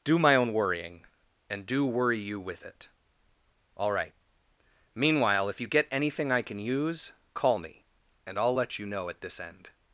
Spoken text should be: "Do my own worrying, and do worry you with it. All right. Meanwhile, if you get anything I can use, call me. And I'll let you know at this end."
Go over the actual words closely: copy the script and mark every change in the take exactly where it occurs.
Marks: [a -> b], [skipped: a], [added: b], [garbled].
"Do my own worrying, and do worry you with it. All right. Meanwhile, if you get anything I can use, call me. And I'll let you know at this end."